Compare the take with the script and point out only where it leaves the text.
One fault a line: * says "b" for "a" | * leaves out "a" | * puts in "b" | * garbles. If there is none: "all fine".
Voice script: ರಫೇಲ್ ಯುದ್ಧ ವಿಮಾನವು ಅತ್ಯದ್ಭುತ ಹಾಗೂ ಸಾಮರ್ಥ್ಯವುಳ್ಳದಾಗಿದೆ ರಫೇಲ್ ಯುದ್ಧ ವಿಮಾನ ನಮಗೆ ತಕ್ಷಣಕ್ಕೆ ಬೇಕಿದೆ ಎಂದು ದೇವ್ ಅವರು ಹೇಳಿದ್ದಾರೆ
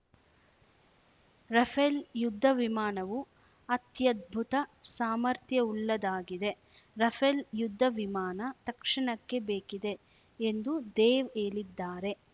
* leaves out "ಹಾಗೂ"
* leaves out "ನಮಗೆ"
* leaves out "ಅವರು"